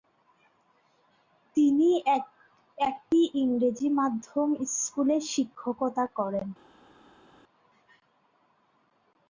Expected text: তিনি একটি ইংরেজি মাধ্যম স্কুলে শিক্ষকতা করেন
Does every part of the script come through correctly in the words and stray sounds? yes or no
yes